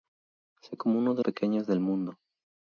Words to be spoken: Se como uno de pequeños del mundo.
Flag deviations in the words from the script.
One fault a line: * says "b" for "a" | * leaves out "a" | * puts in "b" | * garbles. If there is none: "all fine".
all fine